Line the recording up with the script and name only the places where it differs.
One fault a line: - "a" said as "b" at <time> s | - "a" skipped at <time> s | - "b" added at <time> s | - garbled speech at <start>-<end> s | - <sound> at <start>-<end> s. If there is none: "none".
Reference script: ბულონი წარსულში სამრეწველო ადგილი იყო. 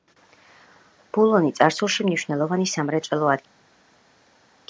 - "მნიშვნელოვანი" added at 2.1 s